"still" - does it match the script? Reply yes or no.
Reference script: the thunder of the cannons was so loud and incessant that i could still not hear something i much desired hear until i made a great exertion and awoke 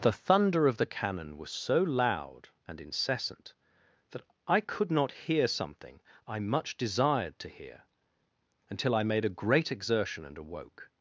no